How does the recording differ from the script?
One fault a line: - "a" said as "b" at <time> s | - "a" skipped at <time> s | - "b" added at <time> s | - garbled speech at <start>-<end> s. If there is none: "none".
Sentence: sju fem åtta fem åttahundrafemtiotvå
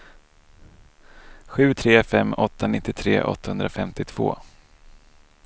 - "tre" added at 1.7 s
- "fem" said as "nittiotre" at 2.7 s